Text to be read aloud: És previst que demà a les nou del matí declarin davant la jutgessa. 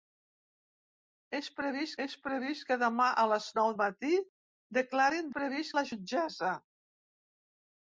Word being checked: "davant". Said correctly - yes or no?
no